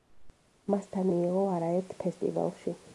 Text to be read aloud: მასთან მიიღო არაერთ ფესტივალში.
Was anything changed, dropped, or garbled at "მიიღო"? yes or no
no